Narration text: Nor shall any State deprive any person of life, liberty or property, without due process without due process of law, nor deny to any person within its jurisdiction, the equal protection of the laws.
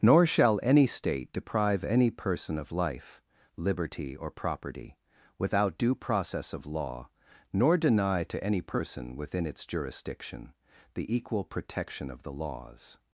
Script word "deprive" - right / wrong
right